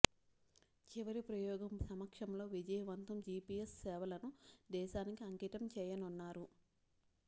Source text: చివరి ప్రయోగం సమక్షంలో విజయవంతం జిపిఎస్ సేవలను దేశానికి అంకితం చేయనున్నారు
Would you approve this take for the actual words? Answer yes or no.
yes